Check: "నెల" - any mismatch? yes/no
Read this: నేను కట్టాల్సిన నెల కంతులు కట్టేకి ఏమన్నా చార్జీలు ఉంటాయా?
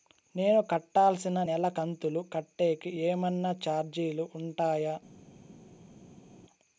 no